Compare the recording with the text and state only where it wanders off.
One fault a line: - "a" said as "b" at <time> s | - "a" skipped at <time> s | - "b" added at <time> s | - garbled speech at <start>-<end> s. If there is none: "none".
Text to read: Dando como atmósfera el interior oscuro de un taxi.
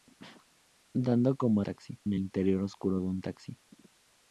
- "atmósfera" said as "taxi" at 1.6 s